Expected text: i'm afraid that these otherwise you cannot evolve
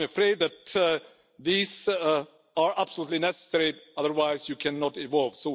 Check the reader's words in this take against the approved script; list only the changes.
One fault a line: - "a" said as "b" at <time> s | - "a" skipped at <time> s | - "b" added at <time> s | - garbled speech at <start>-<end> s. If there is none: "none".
- "are absolutely necessary" added at 1.9 s